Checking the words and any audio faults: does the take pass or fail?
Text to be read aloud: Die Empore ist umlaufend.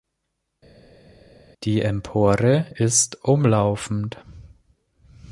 pass